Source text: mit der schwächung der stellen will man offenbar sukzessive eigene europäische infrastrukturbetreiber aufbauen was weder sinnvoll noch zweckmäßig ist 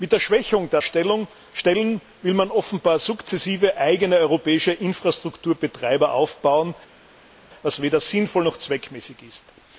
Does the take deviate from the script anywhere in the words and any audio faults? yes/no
no